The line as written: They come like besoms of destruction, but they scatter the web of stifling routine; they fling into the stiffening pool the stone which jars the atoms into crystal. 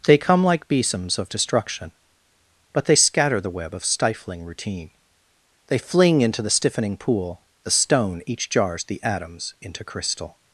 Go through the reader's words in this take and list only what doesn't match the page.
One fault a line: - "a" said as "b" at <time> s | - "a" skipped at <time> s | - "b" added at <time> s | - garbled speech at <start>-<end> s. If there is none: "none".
- "which" said as "each" at 8.3 s